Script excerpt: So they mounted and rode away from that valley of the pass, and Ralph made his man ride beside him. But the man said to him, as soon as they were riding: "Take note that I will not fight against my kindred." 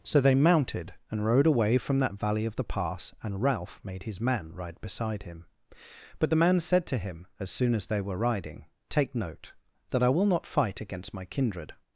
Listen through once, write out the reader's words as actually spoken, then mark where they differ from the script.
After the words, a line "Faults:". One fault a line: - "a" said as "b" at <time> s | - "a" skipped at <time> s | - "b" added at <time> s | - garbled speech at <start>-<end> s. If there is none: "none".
So they mounted and rode away from that valley of the pass, and Ralph made his man ride beside him. But the man said to him, as soon as they were riding: "Take note that I will not fight against my kindred."
Faults:
none